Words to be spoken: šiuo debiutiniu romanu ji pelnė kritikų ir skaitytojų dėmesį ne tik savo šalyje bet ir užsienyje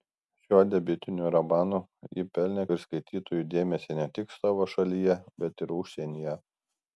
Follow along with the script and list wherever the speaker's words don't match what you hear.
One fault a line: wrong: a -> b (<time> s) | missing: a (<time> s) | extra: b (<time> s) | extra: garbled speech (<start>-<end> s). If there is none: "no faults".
missing: kritikų (2.6 s)